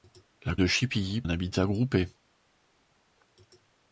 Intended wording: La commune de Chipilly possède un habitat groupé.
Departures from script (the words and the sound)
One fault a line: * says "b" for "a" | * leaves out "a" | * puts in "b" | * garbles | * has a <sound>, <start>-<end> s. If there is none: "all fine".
* leaves out "commune"
* leaves out "possède"